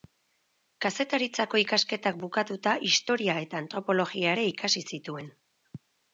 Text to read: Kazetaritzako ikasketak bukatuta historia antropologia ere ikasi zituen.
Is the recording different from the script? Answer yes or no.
yes